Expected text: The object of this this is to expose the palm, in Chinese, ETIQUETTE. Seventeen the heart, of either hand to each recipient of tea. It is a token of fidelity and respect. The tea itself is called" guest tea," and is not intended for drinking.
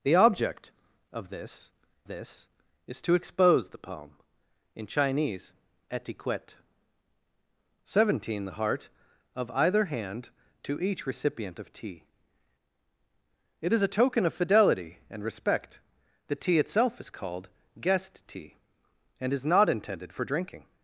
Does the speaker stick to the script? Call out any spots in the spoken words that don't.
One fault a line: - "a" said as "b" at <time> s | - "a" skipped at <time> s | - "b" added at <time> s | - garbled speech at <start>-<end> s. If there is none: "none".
none